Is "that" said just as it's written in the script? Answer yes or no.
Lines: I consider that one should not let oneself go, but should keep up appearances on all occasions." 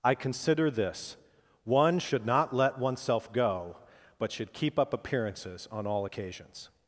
no